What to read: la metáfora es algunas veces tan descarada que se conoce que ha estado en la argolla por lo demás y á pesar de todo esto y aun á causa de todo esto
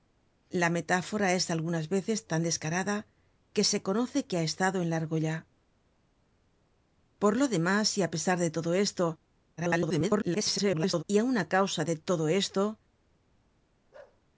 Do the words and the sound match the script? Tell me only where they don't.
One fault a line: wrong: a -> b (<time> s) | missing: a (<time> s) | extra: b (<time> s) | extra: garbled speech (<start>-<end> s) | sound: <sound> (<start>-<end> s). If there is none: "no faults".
extra: garbled speech (9.6-11.0 s)
sound: bark (13.9-14.2 s)